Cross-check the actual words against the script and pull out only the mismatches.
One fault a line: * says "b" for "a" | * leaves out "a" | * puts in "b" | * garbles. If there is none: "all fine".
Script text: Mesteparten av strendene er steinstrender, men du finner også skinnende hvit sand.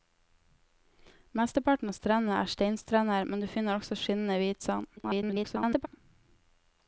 * garbles